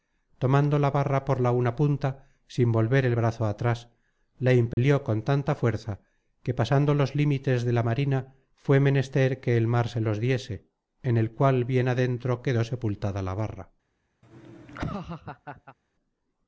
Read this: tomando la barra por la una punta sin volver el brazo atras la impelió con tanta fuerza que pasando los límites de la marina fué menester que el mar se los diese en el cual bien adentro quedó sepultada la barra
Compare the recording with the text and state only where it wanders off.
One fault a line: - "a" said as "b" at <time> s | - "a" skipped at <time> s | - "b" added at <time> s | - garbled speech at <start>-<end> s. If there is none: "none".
none